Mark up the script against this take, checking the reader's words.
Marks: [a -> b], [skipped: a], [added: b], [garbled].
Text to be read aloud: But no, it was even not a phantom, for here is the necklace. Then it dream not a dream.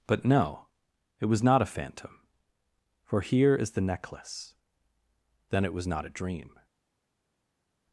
But no, it was [skipped: even] not a phantom, for here is the necklace. Then it [dream -> was] not a dream.